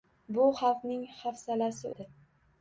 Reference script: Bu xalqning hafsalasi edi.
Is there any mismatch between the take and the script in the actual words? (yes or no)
no